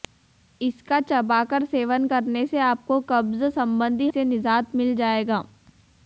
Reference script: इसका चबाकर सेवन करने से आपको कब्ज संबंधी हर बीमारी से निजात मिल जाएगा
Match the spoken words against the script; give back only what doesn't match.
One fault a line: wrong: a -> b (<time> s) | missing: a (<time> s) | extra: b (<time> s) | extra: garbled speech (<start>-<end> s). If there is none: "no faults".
missing: हर बीमारी (4.1 s)